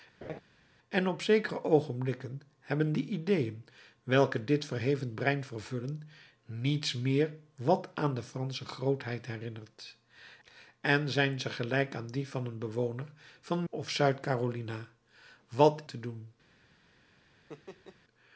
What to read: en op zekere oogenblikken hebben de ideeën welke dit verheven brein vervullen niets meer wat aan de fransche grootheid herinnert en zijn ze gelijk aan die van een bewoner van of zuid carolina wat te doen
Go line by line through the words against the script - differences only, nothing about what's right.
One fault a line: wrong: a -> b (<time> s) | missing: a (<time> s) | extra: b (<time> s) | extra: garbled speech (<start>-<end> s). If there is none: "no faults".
no faults